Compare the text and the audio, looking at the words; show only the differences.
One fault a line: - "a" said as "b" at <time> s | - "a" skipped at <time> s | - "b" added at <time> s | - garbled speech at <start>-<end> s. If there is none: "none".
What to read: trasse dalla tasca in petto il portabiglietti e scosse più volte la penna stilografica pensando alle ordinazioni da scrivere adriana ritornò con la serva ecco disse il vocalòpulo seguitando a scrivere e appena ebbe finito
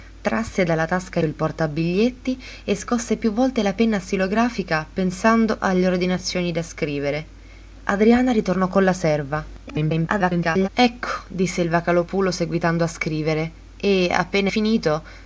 - "in petto" skipped at 1.2 s
- garbled speech at 9.7-10.7 s
- "ebbe" skipped at 14.5 s